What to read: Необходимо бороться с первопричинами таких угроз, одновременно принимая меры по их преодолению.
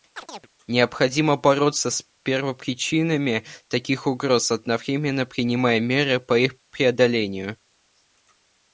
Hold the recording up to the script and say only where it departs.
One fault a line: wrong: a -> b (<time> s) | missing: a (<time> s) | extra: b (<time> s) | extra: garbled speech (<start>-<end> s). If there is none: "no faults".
no faults